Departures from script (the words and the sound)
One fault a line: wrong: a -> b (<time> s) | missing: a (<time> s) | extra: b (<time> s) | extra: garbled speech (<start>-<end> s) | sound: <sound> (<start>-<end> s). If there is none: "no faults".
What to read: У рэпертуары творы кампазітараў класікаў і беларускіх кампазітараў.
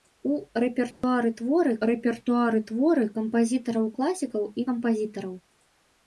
sound: dropout (0.9-1.0 s)
extra: рэпертуары творы (1.9 s)
missing: беларускіх (4.7 s)